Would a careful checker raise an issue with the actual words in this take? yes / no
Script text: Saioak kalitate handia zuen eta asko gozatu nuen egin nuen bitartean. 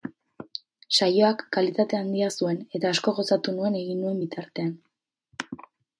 no